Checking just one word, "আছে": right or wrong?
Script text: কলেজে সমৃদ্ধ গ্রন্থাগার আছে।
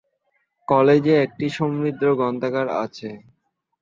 right